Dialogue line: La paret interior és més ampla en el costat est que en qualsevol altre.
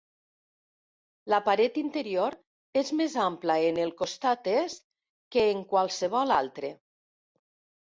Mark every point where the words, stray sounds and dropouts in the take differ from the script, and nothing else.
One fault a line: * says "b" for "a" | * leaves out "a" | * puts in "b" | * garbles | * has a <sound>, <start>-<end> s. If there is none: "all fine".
all fine